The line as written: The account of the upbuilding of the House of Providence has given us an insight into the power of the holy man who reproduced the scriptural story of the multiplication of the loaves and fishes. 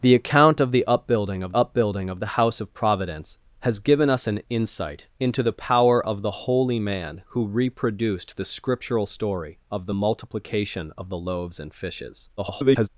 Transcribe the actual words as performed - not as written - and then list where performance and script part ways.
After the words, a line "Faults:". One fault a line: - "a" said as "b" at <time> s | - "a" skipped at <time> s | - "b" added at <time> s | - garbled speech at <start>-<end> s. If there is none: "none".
The account of the upbuilding of upbuilding of the House of Providence has given us an insight into the power of the holy man who reproduced the scriptural story of the multiplication of the loaves and fishes. [garbled]
Faults:
- "upbuilding of" added at 1.5 s
- garbled speech at 12.4-12.9 s